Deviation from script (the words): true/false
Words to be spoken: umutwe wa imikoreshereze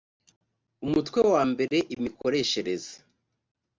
true